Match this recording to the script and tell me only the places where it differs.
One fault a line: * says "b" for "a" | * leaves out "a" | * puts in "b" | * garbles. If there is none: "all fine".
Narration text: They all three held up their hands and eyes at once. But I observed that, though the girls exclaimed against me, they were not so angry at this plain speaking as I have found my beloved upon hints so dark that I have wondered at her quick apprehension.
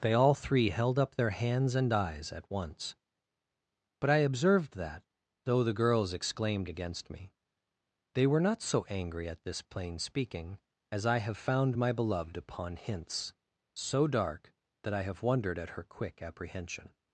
all fine